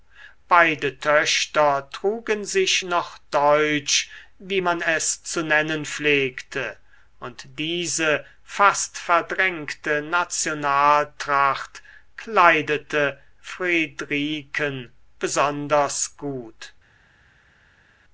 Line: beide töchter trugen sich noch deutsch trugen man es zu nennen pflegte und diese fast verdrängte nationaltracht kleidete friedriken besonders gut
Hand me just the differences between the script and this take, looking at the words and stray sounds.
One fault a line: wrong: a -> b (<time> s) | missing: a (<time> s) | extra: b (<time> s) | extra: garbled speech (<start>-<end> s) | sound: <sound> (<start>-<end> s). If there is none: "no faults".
wrong: trugen -> wie (4.4 s)